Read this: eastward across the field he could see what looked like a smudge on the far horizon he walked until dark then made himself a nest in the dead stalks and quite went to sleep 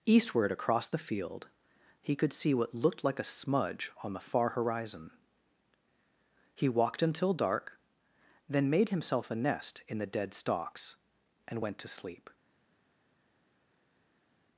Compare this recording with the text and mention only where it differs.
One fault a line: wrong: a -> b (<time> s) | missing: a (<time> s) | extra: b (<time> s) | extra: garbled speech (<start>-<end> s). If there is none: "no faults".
missing: quite (11.6 s)